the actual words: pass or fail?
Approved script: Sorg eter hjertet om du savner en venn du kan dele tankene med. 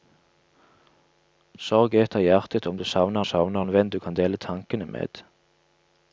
fail